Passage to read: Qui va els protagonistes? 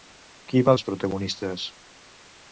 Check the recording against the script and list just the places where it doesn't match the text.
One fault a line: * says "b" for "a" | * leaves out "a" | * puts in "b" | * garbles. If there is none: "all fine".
all fine